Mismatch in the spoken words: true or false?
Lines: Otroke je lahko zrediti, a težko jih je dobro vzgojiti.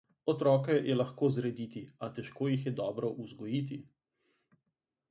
false